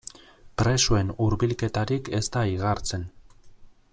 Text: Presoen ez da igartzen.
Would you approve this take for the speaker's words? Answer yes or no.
no